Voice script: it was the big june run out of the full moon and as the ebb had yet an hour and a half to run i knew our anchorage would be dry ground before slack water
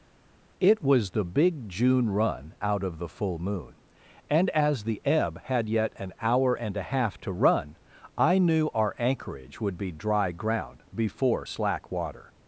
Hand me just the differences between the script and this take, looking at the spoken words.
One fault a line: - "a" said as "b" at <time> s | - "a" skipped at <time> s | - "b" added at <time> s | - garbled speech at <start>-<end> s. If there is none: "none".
none